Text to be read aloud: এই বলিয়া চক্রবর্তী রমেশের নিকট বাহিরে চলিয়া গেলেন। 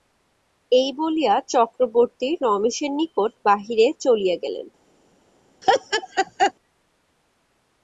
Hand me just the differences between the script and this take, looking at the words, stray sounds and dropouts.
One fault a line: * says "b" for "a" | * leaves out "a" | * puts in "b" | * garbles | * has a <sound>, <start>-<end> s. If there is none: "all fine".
* has a laugh, 5.6-6.5 s